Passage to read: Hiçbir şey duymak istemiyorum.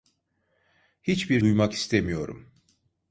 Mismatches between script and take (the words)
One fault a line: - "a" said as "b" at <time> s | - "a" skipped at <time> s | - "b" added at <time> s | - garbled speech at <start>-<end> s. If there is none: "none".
- "şey" skipped at 1.4 s